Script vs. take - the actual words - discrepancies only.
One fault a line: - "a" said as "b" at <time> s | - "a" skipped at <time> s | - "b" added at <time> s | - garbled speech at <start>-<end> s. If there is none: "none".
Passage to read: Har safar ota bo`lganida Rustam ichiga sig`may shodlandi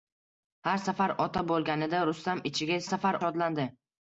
- "sig`may" said as "safar" at 2.9 s